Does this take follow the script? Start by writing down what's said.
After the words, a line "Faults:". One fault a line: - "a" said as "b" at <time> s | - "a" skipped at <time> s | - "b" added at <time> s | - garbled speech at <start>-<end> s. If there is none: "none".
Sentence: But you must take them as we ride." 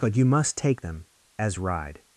But you must take them as ride."
Faults:
- "we" skipped at 1.6 s